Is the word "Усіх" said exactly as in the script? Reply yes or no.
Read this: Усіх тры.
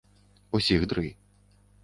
yes